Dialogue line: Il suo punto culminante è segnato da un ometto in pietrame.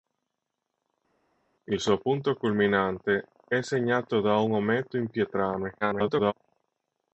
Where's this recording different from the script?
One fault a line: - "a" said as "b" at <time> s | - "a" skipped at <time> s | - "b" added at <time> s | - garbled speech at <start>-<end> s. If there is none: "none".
- garbled speech at 5.8-6.3 s